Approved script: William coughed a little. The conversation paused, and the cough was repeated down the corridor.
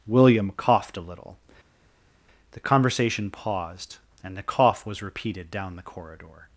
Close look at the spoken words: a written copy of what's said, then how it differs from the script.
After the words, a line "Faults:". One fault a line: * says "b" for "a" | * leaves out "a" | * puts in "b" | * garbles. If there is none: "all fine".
William coughed a little. The conversation paused, and the cough was repeated down the corridor.
Faults:
all fine